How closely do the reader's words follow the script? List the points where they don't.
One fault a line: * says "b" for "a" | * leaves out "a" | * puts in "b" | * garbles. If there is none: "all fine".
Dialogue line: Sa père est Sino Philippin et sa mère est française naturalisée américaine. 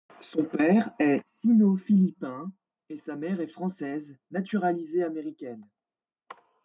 * says "Son" for "Sa"